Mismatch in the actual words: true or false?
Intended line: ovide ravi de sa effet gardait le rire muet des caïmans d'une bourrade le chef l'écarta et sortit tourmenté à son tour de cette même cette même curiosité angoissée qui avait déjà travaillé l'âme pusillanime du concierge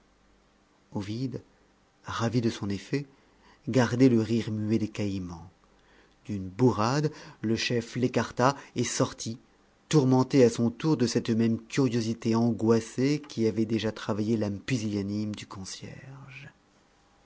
true